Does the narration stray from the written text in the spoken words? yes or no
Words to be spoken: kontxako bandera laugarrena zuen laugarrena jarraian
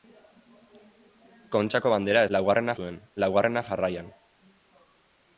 no